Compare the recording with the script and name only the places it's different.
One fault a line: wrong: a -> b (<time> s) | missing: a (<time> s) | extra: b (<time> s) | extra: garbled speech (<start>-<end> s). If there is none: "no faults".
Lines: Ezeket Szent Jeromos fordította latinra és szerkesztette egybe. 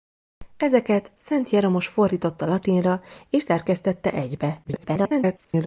extra: garbled speech (4.6-5.7 s)